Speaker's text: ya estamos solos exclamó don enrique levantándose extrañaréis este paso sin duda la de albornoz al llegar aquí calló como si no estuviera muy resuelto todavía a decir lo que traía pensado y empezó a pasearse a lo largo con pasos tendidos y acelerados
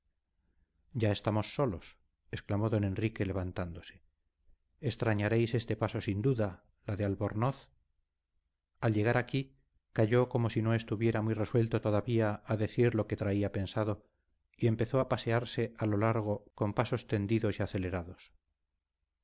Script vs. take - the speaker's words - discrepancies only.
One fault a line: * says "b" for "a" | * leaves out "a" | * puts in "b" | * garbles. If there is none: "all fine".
all fine